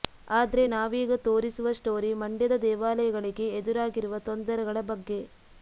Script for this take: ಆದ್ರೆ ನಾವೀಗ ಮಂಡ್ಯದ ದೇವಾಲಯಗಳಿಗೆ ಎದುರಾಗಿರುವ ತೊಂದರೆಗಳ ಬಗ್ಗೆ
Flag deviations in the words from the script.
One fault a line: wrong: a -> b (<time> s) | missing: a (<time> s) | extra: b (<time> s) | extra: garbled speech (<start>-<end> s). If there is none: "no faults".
extra: ತೋರಿಸುವ ಸ್ಟೋರಿ (1.3 s)